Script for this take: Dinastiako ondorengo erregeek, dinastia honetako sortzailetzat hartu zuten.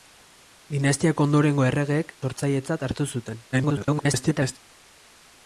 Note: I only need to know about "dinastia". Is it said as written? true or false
false